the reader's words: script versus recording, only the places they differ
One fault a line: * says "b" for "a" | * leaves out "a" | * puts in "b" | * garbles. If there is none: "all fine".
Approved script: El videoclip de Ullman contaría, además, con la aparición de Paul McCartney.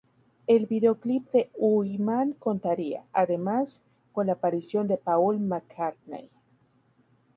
all fine